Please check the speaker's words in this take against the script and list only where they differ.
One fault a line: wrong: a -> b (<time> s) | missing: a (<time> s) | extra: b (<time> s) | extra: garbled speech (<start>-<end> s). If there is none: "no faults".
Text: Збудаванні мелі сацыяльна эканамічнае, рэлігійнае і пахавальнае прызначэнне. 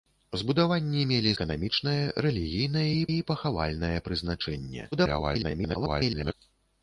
missing: сацыяльна (1.3 s)
extra: і (3.1 s)
extra: garbled speech (4.9-6.3 s)